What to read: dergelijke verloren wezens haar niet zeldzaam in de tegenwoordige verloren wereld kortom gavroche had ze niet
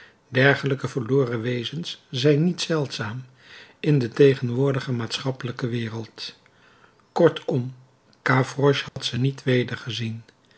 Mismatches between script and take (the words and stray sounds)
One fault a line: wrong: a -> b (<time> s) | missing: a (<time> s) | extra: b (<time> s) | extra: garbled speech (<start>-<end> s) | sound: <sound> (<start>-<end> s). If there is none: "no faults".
wrong: haar -> zijn (2.1 s)
wrong: verloren -> maatschappelijke (4.9 s)
sound: dropout (8.9-9.0 s)